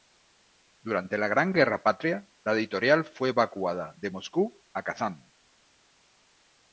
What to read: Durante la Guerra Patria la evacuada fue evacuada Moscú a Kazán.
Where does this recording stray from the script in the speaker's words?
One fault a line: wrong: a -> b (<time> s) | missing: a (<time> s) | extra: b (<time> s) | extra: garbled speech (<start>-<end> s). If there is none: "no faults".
extra: Gran (1.3 s)
wrong: evacuada -> editorial (2.5 s)
extra: de (4.0 s)